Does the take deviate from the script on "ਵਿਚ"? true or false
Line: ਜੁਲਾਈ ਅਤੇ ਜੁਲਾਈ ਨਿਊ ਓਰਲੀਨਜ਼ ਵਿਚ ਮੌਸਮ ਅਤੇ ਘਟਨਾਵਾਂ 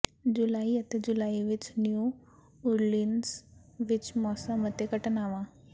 false